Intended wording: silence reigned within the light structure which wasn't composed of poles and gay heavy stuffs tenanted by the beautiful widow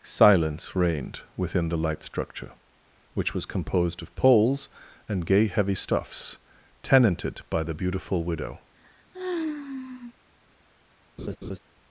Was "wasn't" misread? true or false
true